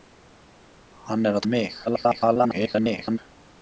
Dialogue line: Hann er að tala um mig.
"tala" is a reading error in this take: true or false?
true